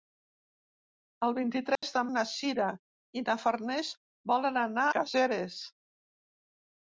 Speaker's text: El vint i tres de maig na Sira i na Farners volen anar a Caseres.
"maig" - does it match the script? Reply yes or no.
no